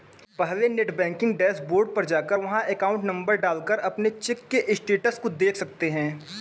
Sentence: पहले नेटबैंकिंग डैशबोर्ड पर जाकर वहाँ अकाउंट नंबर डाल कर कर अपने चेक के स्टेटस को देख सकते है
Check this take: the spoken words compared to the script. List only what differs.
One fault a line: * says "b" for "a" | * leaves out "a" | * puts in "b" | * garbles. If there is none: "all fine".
* leaves out "कर"